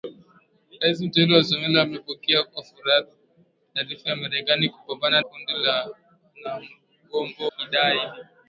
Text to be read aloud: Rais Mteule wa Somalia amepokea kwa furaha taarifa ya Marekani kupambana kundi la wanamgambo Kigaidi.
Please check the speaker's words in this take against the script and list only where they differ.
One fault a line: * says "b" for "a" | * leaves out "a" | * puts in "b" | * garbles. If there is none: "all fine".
all fine